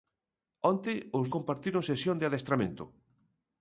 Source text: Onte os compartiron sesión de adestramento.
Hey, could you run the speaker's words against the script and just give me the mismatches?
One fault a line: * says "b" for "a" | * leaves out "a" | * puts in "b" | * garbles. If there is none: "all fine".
all fine